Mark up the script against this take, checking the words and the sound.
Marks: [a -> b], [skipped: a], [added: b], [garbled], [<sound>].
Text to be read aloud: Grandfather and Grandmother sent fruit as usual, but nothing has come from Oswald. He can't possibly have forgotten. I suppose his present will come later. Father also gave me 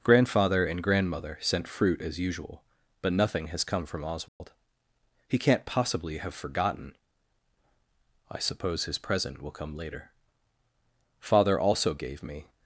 Grandfather and Grandmother sent fruit as usual, but nothing has come from Oswald. [dropout] He can't possibly have forgotten. I suppose his present will come later. Father also gave me